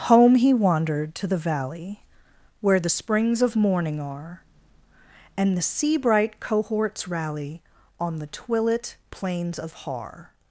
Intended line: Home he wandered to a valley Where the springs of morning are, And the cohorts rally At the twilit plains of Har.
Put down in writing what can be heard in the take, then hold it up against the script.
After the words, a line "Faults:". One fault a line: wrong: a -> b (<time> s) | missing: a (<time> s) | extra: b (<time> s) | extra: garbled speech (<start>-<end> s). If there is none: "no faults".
Home he wandered to the valley Where the springs of morning are, And the sea bright cohorts rally On the twilit plains of Har.
Faults:
wrong: a -> the (1.3 s)
extra: sea bright (5.6 s)
wrong: At -> On (8.0 s)